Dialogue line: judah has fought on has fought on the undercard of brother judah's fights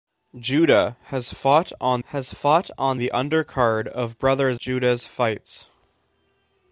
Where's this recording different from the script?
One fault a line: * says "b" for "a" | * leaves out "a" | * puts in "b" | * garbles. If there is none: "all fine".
all fine